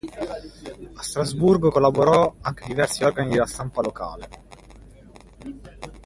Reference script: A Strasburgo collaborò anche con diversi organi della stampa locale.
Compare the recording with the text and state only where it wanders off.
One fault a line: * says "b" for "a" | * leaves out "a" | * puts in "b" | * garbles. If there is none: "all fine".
* leaves out "con"